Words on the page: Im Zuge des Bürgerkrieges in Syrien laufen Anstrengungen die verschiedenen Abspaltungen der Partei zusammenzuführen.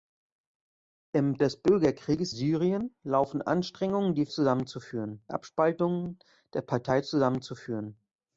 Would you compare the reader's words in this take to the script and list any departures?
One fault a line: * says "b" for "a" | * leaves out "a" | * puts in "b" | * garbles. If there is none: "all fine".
* leaves out "Zuge"
* leaves out "in"
* says "zusammenzuführen" for "verschiedenen"